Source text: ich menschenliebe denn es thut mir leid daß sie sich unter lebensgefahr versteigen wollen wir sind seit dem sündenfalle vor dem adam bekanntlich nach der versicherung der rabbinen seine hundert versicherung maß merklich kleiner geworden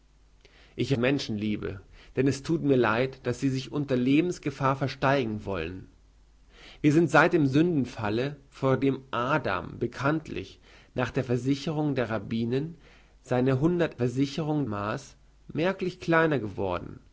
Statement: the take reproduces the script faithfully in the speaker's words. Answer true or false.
true